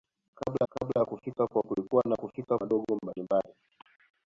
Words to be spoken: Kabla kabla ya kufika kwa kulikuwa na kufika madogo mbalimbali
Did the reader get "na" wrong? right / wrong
right